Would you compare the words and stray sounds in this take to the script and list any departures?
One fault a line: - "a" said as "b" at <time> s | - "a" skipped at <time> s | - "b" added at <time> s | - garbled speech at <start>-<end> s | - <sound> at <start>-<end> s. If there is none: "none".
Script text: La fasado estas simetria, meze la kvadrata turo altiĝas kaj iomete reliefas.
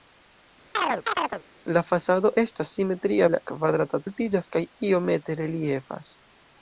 - chirp at 0.7-1.4 s
- "meze" skipped at 3.3 s
- "turo" skipped at 4.0 s